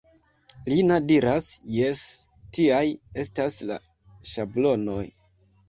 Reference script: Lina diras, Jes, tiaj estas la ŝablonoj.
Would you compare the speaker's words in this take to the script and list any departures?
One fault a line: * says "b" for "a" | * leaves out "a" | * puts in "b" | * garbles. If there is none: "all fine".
all fine